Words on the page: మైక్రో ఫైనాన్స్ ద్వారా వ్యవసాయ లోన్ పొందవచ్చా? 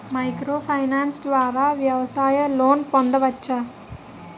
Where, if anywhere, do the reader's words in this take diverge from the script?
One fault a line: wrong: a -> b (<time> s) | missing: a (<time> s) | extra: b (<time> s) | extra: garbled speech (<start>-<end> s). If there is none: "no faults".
no faults